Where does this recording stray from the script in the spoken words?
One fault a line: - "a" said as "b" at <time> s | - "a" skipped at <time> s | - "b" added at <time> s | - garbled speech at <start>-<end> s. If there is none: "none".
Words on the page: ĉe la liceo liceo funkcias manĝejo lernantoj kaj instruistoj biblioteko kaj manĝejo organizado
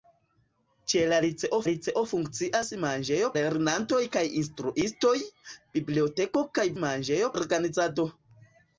none